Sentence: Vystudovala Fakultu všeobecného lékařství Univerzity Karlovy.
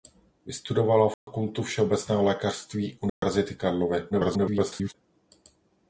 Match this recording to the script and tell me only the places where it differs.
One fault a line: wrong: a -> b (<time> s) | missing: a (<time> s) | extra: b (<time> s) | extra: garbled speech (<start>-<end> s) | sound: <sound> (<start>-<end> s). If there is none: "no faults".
sound: dropout (1.1-1.3 s)
sound: dropout (3.1-3.2 s)
extra: garbled speech (4.1-4.9 s)